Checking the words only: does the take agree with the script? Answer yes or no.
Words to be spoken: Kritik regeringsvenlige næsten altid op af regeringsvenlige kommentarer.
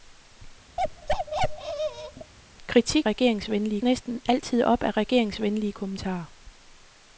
yes